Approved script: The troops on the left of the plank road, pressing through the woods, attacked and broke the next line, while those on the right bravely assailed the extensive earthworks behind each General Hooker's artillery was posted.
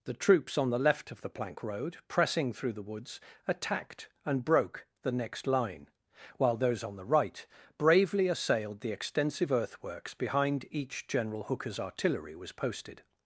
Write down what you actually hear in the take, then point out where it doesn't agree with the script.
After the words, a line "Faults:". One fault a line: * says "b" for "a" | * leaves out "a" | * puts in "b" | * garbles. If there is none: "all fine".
The troops on the left of the plank road, pressing through the woods, attacked and broke the next line, while those on the right bravely assailed the extensive earthworks behind each General Hooker's artillery was posted.
Faults:
all fine